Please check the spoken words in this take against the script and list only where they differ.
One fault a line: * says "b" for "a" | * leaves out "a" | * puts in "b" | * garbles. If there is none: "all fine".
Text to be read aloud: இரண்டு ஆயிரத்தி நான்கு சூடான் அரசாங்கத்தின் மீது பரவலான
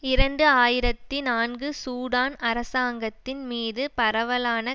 all fine